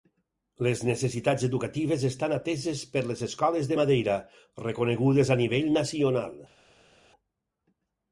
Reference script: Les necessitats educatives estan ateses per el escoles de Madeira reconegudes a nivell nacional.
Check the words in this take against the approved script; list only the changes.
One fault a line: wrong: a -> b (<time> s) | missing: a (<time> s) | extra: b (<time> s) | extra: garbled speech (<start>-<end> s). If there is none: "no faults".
wrong: el -> les (3.1 s)